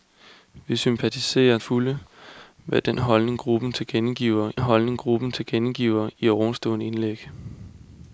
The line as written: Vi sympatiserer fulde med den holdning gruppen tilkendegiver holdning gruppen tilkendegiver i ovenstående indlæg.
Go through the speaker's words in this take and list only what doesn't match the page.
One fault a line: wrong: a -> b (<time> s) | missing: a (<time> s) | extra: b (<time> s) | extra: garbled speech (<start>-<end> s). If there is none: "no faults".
no faults